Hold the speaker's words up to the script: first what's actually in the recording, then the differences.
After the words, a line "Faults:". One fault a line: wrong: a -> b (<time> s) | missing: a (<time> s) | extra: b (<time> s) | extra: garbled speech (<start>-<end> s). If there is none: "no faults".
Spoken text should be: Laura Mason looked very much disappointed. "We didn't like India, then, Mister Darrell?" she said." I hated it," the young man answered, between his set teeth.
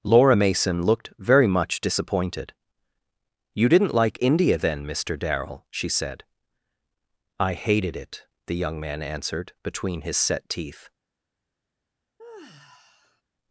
Laura Mason looked very much disappointed. "You didn't like India, then, Mister Darrell?" she said." I hated it," the young man answered, between his set teeth.
Faults:
wrong: We -> You (3.5 s)